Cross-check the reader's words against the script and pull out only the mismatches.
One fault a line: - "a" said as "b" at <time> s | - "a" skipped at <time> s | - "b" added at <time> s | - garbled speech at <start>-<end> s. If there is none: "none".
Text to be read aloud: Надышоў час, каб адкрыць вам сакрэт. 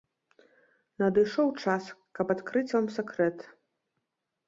none